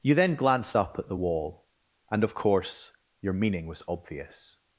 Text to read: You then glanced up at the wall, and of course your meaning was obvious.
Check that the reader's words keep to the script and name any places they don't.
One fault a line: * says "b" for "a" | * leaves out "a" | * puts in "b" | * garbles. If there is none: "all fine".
all fine